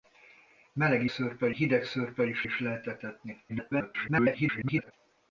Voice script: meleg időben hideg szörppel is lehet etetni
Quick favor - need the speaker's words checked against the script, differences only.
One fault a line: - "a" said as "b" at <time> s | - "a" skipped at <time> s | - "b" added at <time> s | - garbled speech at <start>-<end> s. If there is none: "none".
- "időben" said as "szörppel" at 1.1 s
- "is" added at 2.4 s
- garbled speech at 3.5-4.9 s